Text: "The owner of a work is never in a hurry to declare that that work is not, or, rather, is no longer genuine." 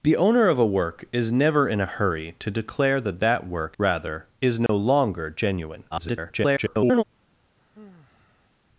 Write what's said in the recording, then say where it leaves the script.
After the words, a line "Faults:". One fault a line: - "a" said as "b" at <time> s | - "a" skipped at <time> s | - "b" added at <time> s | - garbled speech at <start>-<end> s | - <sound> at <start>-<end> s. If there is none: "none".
"The owner of a work is never in a hurry to declare that that work rather, is no longer genuine." [garbled]
Faults:
- "is not or" skipped at 3.8 s
- dropout at 4.7-4.7 s
- garbled speech at 5.9-7.0 s
- sigh at 7.6-8.5 s